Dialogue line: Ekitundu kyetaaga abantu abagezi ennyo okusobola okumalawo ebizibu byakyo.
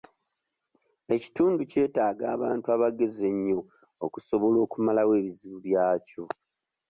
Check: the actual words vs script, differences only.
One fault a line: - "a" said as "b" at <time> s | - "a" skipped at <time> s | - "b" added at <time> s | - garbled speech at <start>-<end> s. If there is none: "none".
none